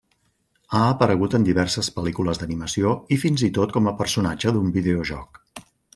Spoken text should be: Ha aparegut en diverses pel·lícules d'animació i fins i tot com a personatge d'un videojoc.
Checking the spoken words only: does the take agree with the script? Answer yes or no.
yes